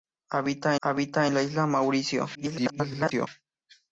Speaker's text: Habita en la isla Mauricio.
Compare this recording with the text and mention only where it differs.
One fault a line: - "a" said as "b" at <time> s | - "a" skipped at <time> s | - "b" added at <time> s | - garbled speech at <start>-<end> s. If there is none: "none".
- "habita" added at 0.8 s
- garbled speech at 2.3-3.3 s